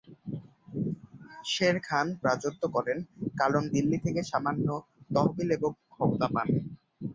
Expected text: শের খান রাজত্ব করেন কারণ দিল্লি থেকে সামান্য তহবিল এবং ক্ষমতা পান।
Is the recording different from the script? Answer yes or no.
no